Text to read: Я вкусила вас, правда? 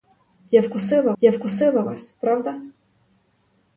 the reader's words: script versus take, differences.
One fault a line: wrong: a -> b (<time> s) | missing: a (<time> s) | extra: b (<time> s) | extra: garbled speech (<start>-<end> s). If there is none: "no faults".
extra: я вкусила (1.2 s)